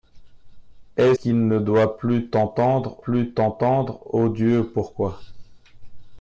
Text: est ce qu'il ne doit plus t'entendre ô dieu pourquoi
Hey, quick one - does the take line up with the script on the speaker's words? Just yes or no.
no